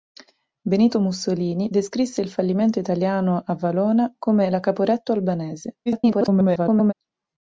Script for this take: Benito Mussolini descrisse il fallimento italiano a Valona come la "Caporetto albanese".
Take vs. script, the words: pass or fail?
fail